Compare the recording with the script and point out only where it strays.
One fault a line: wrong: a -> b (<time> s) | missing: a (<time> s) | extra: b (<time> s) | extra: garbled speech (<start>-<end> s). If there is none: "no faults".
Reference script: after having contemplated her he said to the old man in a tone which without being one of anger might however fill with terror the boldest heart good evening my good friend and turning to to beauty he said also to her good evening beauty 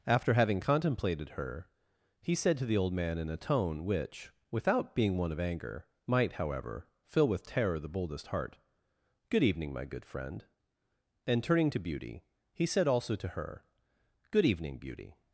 missing: to (11.8 s)